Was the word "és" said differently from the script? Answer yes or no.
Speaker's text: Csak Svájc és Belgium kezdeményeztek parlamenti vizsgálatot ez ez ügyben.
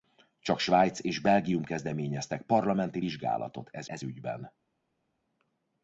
no